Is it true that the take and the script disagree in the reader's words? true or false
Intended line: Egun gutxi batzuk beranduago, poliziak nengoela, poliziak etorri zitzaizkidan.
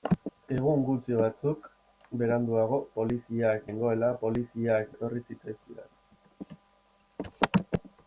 false